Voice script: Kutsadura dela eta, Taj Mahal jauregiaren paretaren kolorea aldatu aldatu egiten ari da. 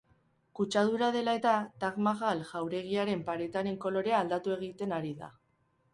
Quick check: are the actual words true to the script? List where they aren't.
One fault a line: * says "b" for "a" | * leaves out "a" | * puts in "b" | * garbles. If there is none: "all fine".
* leaves out "aldatu"